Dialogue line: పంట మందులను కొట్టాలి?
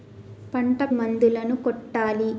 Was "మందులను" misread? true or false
false